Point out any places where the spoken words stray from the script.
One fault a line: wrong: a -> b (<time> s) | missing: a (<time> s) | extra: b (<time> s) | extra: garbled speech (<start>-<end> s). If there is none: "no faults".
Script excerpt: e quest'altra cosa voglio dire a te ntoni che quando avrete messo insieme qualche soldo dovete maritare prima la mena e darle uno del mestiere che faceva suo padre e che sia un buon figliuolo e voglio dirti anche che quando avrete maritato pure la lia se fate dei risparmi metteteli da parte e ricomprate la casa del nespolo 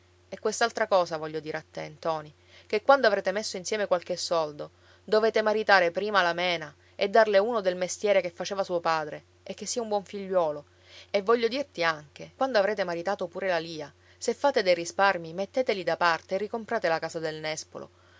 missing: che (12.3 s)